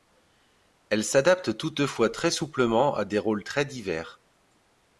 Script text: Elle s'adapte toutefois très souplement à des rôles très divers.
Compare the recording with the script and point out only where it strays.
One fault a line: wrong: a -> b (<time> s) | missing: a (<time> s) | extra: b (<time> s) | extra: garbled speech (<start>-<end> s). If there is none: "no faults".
no faults